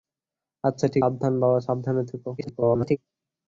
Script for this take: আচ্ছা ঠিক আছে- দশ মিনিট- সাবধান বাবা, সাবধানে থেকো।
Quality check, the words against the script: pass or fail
fail